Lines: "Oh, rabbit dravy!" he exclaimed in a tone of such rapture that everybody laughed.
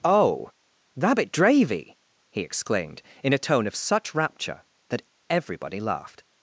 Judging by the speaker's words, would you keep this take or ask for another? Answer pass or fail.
pass